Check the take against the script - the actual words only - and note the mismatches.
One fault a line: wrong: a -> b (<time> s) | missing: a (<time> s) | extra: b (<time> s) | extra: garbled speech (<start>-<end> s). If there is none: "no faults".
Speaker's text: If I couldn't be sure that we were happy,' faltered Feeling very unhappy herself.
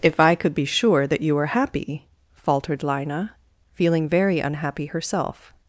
wrong: couldn't -> could (0.3 s)
wrong: we -> you (1.2 s)
extra: Lina (2.8 s)